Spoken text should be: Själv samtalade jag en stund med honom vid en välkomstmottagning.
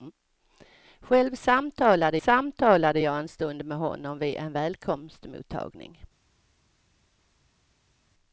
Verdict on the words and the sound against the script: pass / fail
fail